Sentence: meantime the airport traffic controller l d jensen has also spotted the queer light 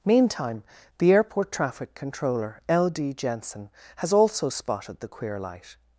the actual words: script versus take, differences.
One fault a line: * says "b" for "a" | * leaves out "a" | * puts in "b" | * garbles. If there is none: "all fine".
all fine